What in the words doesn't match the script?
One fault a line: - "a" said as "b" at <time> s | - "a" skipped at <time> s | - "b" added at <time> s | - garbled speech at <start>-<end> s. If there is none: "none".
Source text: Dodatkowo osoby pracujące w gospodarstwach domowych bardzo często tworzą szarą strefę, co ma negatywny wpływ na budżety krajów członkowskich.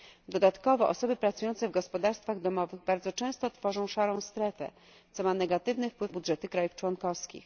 - "na" skipped at 6.1 s